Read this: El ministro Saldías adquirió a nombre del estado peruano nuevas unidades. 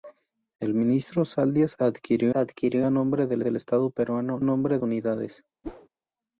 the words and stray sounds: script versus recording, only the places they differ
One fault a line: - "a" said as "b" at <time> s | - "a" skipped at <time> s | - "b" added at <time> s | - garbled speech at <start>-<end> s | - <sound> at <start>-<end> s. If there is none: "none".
- "adquirió" added at 2.3 s
- "del" added at 3.4 s
- "nuevas" said as "nombre" at 4.4 s
- whoosh at 5.6-5.9 s